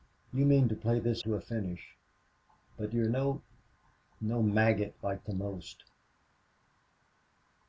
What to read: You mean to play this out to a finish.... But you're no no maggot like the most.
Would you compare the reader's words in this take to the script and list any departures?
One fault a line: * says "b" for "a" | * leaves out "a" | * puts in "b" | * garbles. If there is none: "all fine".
* leaves out "out"